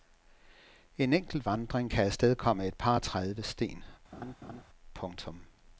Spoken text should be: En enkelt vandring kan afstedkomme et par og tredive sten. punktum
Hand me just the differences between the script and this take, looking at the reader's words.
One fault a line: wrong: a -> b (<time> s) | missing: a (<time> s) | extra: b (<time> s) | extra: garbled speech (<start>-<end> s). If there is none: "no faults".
no faults